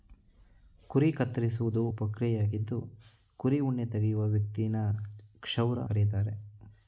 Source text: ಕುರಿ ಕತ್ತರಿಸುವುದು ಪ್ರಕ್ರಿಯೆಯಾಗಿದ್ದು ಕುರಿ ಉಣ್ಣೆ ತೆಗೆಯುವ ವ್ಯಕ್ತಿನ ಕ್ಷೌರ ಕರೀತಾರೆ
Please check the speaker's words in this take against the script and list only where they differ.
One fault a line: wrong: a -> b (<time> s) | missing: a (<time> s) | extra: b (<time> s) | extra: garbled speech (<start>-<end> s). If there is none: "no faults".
no faults